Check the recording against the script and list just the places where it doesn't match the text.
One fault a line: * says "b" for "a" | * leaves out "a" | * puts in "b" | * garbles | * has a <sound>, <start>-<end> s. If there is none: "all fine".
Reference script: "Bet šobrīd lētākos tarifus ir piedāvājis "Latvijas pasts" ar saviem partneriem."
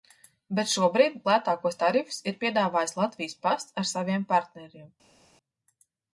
all fine